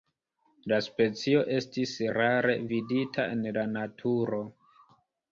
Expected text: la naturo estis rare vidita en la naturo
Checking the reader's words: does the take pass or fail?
fail